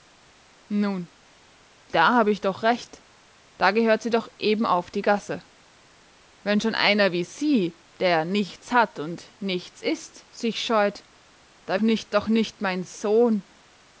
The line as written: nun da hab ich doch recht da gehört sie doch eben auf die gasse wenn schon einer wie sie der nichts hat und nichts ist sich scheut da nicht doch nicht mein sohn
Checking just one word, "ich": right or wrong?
right